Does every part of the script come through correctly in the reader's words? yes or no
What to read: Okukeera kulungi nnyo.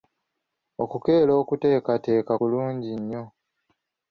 no